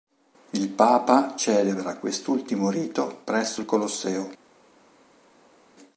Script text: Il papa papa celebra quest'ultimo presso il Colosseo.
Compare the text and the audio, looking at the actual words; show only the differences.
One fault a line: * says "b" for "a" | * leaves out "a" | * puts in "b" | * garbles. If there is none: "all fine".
* leaves out "papa"
* puts in "rito"